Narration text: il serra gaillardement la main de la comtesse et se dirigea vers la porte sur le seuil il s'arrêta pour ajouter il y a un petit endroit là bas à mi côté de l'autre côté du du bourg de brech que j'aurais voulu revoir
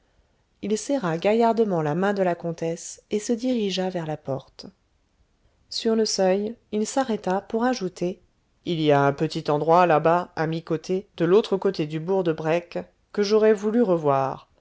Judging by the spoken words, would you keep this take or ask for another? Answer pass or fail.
fail